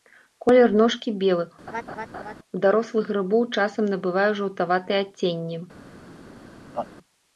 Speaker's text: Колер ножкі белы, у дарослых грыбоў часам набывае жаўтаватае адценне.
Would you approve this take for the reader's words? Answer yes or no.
yes